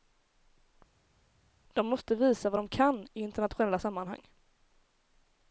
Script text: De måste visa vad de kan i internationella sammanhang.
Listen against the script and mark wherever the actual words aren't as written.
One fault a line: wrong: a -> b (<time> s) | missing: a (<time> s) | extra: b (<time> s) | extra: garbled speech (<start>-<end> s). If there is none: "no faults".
no faults